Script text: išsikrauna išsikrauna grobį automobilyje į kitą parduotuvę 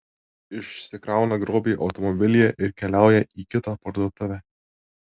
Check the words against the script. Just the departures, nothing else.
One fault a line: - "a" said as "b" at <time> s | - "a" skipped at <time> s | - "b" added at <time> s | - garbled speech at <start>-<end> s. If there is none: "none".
- "išsikrauna" skipped at 1.4 s
- "ir keliauja" added at 2.7 s